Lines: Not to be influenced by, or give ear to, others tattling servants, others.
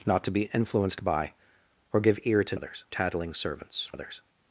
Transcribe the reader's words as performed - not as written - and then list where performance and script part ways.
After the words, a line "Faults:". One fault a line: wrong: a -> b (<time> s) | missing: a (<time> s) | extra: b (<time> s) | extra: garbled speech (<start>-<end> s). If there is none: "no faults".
Not to be influenced by, or give ear to, others tattling servants, others.
Faults:
no faults